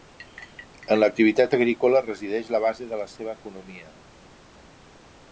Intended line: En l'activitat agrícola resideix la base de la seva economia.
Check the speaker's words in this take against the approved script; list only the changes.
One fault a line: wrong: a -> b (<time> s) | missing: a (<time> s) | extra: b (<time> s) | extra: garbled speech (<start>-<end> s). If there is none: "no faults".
no faults